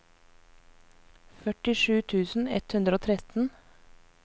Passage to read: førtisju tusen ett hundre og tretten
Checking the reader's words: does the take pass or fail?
pass